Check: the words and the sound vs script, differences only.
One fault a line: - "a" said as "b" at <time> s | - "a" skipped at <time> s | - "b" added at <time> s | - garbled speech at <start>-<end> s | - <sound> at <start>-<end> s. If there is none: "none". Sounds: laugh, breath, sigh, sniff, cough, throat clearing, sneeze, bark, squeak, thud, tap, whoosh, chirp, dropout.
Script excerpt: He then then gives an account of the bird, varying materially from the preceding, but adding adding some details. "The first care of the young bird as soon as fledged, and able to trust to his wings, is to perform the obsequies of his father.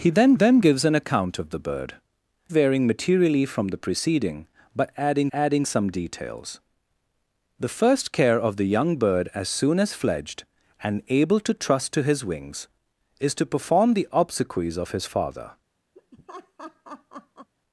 - laugh at 15.9-17.5 s